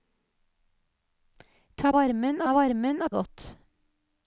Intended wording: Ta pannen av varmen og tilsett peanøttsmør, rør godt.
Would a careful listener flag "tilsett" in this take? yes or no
yes